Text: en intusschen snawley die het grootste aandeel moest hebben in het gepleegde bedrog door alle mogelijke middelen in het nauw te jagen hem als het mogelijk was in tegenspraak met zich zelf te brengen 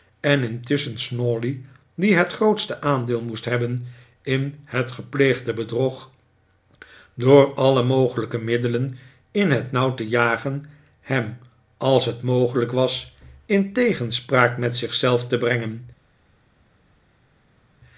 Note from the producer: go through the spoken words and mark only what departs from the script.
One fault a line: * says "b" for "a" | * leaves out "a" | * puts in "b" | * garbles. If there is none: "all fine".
all fine